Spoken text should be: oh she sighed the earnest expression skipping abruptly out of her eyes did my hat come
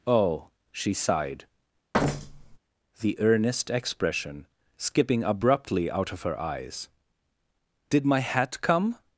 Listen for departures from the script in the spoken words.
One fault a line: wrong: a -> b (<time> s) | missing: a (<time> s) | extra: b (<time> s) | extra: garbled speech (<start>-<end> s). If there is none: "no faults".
no faults